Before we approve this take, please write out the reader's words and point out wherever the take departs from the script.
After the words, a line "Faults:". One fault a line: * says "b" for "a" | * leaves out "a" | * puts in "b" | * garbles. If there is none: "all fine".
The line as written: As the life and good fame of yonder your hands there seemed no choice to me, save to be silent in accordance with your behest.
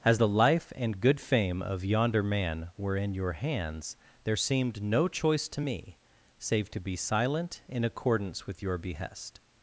As the life and good fame of yonder man were in your hands there seemed no choice to me, save to be silent in accordance with your behest.
Faults:
* puts in "man were in"